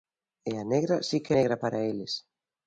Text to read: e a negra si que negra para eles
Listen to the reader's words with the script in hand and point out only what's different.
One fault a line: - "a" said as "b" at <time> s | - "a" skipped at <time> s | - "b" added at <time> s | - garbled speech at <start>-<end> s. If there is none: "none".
none